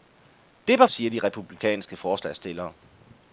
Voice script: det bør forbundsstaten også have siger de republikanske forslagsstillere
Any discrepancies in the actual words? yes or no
yes